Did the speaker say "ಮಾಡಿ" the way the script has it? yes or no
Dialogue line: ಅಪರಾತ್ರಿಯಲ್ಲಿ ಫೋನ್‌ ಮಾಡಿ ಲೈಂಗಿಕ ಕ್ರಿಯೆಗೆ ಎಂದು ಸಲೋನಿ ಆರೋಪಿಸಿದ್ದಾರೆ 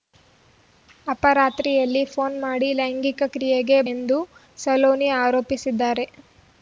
yes